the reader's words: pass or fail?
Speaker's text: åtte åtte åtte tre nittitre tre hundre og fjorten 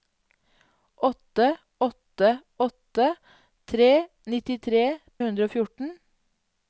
fail